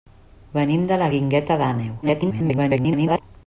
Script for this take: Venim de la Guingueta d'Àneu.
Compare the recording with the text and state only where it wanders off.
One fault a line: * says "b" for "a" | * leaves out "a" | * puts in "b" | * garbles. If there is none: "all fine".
* garbles